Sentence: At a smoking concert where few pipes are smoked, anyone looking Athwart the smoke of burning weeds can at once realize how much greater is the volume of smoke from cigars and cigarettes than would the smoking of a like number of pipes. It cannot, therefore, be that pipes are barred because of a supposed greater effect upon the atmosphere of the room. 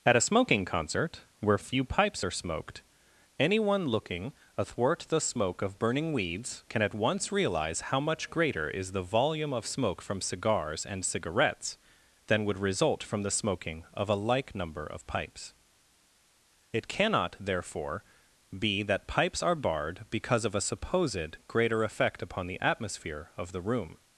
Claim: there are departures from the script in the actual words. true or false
true